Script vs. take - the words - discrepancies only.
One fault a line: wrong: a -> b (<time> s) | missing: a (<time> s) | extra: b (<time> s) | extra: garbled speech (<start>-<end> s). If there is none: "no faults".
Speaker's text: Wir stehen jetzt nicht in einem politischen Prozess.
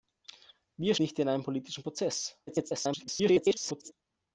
missing: stehen jetzt (0.9 s)
extra: garbled speech (2.5-3.9 s)